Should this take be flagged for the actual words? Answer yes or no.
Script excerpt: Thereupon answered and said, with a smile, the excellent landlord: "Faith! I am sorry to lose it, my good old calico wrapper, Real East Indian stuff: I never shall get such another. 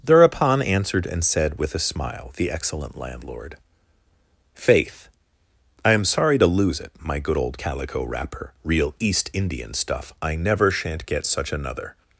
yes